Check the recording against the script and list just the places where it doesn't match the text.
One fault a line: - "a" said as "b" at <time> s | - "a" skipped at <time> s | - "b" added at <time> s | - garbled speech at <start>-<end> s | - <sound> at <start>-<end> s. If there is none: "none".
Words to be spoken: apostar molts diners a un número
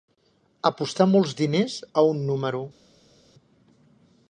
none